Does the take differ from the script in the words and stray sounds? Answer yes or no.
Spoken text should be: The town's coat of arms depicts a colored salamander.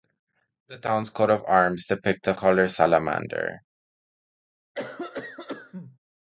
yes